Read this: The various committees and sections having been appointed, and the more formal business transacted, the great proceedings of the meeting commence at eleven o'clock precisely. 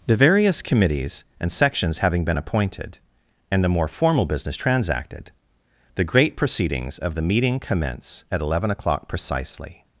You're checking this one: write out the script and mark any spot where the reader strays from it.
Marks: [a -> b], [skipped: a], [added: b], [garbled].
The various committees and sections having been appointed, and the more formal business transacted, the great proceedings of the meeting commence at eleven o'clock precisely.